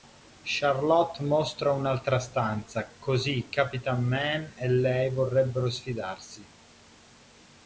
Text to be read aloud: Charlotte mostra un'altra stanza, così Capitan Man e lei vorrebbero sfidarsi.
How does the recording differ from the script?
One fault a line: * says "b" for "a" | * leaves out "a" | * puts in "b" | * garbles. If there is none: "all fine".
all fine